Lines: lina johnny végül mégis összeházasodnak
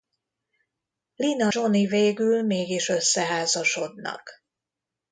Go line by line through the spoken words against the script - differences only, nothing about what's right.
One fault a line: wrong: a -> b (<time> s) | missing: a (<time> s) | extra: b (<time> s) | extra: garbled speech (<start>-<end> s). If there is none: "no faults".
no faults